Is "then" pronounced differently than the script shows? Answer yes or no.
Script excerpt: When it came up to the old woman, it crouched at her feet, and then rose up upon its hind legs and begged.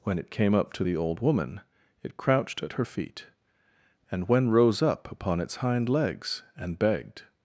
yes